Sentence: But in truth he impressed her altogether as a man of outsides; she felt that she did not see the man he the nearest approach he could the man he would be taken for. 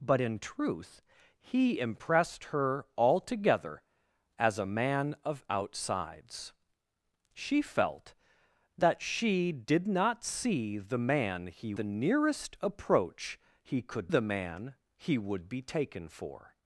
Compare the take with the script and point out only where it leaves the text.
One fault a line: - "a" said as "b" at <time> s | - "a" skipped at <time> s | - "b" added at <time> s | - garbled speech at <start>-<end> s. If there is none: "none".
none